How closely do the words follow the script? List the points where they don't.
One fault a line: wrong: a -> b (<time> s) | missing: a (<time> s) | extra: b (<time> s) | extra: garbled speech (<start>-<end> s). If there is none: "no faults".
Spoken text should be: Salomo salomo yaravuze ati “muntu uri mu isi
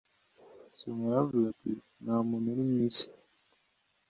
missing: salomo (1.0 s)
extra: nta (2.0 s)